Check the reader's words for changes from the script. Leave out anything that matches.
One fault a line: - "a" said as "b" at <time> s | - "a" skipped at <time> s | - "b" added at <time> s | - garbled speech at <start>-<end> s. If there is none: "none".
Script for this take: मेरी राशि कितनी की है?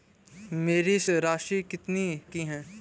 none